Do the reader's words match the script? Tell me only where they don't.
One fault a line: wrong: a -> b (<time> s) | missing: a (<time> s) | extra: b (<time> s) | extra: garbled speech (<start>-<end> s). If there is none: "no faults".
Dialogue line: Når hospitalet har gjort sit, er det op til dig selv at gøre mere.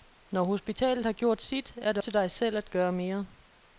missing: op (2.0 s)